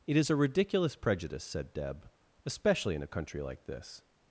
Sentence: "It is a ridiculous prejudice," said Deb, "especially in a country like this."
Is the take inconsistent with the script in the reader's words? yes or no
no